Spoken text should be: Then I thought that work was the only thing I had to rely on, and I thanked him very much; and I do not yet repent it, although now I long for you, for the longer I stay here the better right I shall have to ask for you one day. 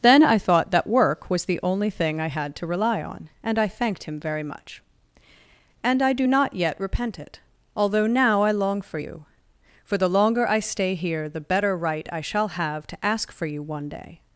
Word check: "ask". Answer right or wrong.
right